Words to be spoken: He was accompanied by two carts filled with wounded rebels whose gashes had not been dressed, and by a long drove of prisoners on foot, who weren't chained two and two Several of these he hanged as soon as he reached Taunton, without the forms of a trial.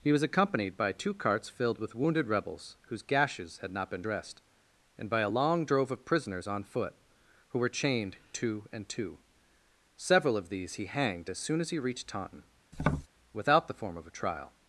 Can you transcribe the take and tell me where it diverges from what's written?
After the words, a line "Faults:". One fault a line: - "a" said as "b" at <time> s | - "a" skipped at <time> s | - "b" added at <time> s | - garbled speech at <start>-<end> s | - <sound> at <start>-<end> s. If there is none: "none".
He was accompanied by two carts filled with wounded rebels whose gashes had not been dressed, and by a long drove of prisoners on foot, who were chained two and two Several of these he hanged as soon as he reached Taunton, without the form of a trial.
Faults:
- "weren't" said as "were" at 7.6 s
- tap at 12.7-13.1 s
- "forms" said as "form" at 13.7 s